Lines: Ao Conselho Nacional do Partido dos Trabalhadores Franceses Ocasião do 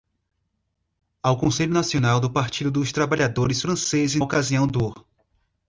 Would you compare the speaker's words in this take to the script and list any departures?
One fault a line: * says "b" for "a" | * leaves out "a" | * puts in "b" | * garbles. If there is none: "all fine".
all fine